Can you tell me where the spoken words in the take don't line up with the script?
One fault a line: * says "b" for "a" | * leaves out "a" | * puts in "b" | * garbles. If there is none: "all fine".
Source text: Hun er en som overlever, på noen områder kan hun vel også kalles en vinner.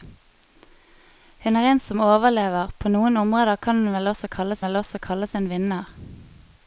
* puts in "vel også kalles"